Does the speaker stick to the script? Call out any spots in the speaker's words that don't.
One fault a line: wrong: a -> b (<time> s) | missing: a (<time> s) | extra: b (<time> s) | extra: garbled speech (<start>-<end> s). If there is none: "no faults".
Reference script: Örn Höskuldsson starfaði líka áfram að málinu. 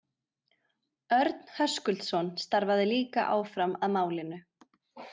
no faults